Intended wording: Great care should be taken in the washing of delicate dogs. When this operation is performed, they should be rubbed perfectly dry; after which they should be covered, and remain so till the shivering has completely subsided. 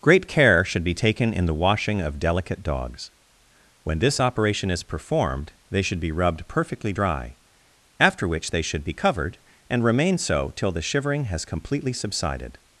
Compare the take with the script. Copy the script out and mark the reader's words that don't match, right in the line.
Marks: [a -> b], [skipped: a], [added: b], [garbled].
Great care should be taken in the washing of delicate dogs. When this operation is performed, they should be rubbed perfectly dry; after which they should be covered, and remain so till the shivering has completely subsided.